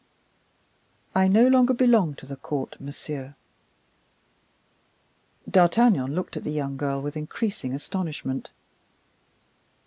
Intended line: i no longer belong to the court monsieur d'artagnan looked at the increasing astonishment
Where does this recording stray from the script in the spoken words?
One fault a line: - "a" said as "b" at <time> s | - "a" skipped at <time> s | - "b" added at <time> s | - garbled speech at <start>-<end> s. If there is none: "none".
- "young girl with" added at 6.5 s